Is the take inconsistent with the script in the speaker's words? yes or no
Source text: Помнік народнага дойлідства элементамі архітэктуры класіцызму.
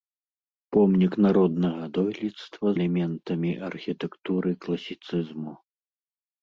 no